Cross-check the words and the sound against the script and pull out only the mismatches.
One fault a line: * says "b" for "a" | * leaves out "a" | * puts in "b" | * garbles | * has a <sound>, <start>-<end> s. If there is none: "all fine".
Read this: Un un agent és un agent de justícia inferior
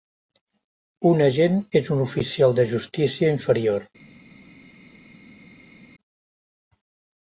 * leaves out "un"
* says "oficial" for "agent"